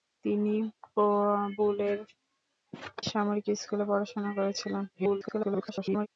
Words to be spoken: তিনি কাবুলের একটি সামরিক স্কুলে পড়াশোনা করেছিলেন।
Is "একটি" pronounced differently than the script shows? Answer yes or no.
yes